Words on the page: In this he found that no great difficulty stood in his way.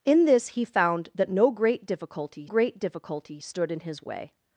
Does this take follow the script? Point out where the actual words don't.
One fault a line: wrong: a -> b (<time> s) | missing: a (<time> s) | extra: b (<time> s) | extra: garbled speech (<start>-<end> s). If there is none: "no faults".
extra: great difficulty (2.4 s)